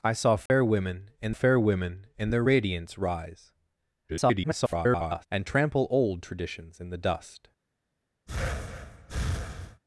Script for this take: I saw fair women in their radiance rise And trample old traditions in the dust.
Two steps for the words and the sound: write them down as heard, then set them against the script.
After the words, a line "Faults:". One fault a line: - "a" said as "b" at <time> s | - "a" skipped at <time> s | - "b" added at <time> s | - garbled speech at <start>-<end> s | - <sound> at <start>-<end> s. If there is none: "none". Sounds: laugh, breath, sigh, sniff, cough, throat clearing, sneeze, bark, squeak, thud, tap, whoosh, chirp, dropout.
I saw fair women in fair women in their radiance rise [garbled] And trample old traditions in the dust.
Faults:
- dropout at 0.5-0.5 s
- "fair women in" added at 1.3 s
- garbled speech at 4.1-5.3 s
- breath at 8.3-9.8 s